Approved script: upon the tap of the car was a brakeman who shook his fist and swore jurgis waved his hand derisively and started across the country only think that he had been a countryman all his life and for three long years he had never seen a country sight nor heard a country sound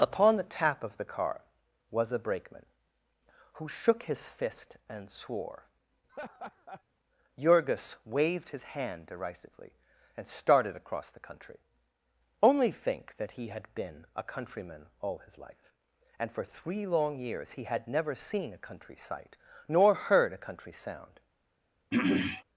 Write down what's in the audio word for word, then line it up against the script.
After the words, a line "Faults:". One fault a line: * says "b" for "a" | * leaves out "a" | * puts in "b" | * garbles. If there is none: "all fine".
upon the tap of the car was a brakeman who shook his fist and swore jurgis waved his hand derisively and started across the country only think that he had been a countryman all his life and for three long years he had never seen a country sight nor heard a country sound
Faults:
all fine